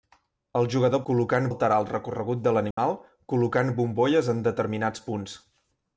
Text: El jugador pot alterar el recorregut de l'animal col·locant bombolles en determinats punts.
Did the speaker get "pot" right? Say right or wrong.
wrong